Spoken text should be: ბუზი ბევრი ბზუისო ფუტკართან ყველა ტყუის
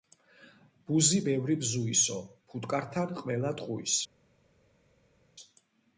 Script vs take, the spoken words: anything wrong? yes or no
no